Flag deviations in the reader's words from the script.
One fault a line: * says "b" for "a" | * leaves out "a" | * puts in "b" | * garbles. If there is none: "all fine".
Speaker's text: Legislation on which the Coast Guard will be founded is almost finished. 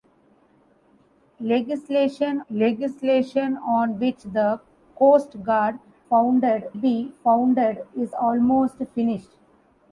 * puts in "legislation"
* says "founded" for "will"